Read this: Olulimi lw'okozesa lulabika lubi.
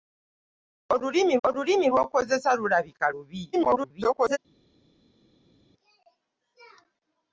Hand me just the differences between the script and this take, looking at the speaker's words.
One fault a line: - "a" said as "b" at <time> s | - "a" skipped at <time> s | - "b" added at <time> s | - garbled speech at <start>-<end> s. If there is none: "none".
- "olulimi" added at 1.5 s
- garbled speech at 3.5-4.4 s